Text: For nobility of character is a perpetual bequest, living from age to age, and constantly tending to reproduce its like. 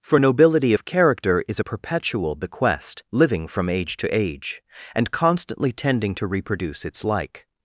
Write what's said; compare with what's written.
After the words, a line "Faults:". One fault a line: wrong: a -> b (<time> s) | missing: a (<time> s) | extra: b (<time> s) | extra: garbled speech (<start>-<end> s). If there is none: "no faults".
For nobility of character is a perpetual bequest, living from age to age, and constantly tending to reproduce its like.
Faults:
no faults